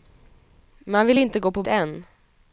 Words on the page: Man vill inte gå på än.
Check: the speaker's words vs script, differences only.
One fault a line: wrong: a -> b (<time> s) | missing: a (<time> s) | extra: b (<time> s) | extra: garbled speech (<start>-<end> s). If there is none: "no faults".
no faults